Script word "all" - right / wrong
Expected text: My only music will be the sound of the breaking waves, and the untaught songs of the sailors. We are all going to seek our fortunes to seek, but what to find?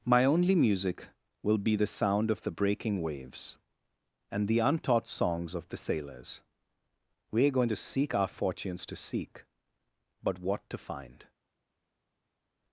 wrong